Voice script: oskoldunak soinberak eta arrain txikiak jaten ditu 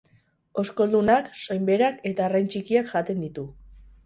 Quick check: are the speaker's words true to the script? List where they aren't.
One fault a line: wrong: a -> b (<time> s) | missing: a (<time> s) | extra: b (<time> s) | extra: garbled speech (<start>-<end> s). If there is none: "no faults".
no faults